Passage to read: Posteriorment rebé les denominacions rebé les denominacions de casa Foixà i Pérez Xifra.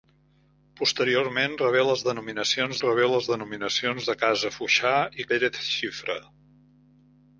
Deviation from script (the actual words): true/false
false